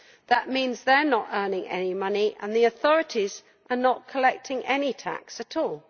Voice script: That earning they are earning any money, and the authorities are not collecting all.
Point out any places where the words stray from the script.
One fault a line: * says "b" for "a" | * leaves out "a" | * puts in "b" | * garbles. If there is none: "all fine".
* says "means" for "earning"
* puts in "not"
* puts in "any tax at"